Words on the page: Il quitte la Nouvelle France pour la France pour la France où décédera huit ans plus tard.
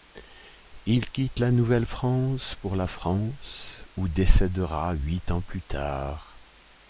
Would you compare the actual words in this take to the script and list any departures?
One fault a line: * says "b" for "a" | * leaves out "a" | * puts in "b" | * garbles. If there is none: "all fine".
* leaves out "pour la France"